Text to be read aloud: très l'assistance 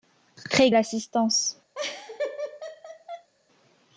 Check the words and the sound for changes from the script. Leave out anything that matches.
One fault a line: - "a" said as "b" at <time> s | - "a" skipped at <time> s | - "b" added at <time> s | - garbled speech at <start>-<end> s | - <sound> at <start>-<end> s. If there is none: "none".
- laugh at 1.7-3.3 s